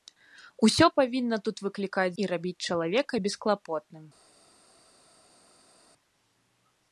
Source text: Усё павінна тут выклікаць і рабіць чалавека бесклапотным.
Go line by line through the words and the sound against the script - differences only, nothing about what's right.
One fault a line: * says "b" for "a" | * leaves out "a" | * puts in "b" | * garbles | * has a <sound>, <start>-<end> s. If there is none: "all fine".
all fine